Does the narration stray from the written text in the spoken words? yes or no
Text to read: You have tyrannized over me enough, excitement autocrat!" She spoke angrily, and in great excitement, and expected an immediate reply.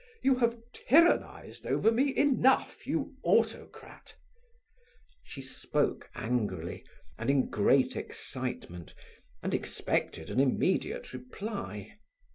yes